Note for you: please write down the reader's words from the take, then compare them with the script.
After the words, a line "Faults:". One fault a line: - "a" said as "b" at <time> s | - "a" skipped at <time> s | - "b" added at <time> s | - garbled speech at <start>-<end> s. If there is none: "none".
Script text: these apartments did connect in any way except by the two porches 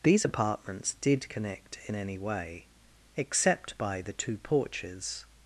these apartments did connect in any way except by the two porches
Faults:
none